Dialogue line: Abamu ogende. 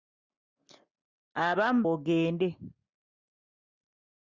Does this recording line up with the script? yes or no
yes